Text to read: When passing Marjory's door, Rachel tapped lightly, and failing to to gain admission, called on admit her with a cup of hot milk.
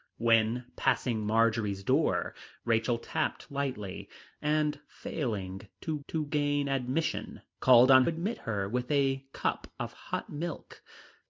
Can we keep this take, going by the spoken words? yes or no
yes